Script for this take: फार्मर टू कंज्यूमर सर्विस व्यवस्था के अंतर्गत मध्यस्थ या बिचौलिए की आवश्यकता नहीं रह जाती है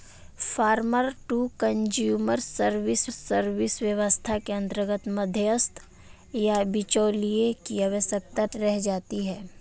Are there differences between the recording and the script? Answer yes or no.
yes